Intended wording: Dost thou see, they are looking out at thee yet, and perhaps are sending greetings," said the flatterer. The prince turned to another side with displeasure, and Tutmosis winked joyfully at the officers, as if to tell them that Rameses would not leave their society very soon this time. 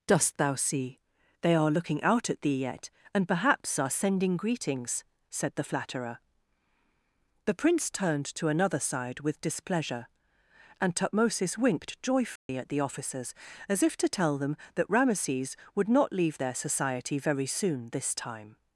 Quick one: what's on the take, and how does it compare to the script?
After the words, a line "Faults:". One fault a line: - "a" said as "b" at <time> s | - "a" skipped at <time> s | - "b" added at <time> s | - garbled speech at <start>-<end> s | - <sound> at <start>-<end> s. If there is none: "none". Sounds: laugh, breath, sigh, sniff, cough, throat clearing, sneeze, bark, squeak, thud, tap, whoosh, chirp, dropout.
Dost thou see, they are looking out at thee yet, and perhaps are sending greetings," said the flatterer. The prince turned to another side with displeasure, and Tutmosis winked joyfully at the officers, as if to tell them that Rameses would not leave their society very soon this time.
Faults:
- dropout at 12.4-12.5 s